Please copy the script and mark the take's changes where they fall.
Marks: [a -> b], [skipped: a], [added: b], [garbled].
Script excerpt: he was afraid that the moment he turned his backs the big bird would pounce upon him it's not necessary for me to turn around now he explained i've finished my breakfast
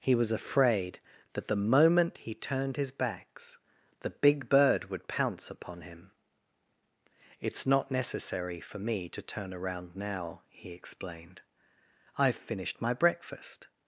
he was afraid that the moment he turned his backs the big bird would pounce upon him it's not necessary for me to turn around now he explained i've finished my breakfast